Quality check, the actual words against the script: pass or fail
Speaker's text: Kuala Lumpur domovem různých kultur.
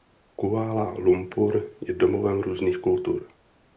fail